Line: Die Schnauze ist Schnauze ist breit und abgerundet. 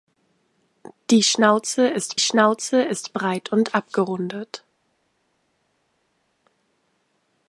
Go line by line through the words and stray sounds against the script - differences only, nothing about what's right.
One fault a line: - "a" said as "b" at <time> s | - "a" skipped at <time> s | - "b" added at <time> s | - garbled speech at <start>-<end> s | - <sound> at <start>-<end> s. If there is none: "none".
none